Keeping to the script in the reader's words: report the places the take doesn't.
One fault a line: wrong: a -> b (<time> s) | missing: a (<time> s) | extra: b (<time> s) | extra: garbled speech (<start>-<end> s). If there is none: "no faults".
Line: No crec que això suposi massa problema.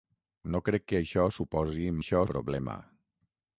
wrong: massa -> això (2.0 s)